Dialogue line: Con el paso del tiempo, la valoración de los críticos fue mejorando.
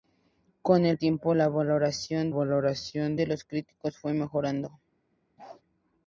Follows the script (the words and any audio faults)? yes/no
no